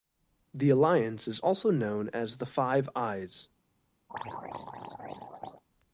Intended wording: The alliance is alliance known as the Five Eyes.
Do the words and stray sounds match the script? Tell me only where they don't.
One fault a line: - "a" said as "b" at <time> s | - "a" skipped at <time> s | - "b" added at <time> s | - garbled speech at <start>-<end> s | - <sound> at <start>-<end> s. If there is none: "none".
- "alliance" said as "also" at 1.4 s
- throat clearing at 4.1-5.6 s